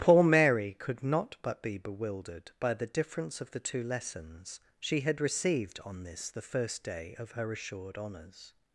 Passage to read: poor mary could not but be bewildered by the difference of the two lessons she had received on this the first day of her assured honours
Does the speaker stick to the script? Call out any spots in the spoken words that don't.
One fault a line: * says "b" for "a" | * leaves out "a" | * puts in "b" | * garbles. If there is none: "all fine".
all fine